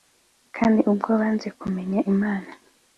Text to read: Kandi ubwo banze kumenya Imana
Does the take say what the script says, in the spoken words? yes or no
yes